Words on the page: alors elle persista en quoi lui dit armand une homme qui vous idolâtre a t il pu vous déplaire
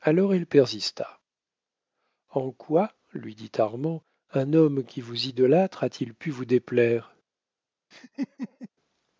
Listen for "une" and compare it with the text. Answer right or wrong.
wrong